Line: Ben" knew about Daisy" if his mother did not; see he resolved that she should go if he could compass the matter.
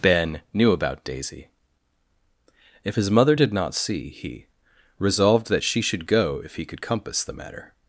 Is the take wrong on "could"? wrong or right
right